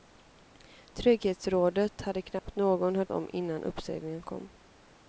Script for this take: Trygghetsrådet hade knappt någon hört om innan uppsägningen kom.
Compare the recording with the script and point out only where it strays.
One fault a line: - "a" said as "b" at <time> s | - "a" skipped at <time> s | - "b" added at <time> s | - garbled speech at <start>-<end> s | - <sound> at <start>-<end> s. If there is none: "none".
- dropout at 2.4-2.5 s